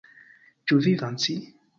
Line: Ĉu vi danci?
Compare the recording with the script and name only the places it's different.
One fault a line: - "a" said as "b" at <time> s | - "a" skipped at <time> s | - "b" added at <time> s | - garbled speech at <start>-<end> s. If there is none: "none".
none